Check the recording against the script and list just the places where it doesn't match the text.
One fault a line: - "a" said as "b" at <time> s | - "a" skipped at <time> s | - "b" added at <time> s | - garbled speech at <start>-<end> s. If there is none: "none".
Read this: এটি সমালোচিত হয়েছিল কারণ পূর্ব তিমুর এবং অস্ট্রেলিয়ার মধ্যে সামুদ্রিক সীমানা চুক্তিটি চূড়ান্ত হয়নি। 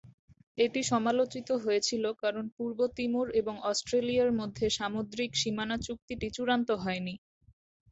none